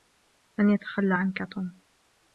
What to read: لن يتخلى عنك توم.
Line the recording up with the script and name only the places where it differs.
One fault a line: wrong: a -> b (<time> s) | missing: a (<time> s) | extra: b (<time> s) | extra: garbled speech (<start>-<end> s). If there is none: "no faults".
no faults